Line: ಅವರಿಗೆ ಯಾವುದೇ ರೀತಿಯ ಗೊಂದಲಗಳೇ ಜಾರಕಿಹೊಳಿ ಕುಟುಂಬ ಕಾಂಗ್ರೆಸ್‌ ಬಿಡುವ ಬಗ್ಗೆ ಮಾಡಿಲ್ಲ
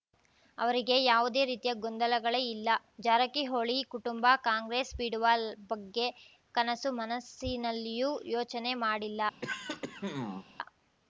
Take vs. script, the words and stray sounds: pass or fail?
fail